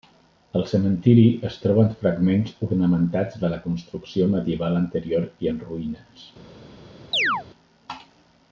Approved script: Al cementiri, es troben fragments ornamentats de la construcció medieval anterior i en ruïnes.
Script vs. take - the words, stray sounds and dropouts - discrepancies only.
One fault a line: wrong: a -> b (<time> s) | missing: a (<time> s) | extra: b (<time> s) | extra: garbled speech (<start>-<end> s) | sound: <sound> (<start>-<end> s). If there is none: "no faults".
sound: chirp (7.1-7.4 s)